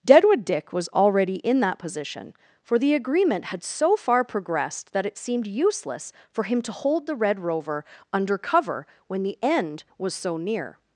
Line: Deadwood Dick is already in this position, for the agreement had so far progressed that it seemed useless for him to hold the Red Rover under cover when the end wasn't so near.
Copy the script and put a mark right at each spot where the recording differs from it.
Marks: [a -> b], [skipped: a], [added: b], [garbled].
Deadwood Dick [is -> was] already in [this -> that] position, for the agreement had so far progressed that it seemed useless for him to hold the Red Rover under cover when the end [wasn't -> was] so near.